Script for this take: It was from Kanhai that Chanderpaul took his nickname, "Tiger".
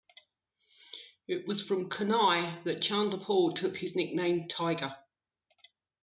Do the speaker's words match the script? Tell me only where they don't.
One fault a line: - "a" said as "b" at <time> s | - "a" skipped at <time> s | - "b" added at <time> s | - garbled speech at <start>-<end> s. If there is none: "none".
none